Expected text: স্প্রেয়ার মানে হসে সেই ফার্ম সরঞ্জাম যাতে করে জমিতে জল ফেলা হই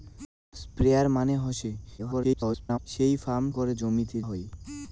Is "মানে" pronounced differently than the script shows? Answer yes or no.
no